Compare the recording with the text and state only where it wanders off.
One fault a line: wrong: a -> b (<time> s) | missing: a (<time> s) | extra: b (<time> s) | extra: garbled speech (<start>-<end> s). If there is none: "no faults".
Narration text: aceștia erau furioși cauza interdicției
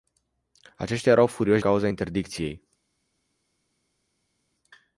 no faults